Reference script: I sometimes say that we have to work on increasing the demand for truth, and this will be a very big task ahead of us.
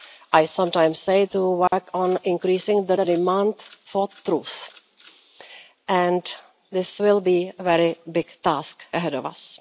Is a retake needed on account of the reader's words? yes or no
yes